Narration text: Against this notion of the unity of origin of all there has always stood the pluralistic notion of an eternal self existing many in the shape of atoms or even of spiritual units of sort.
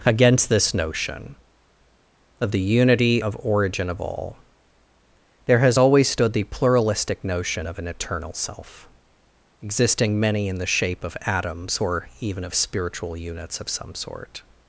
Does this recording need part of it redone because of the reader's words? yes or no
yes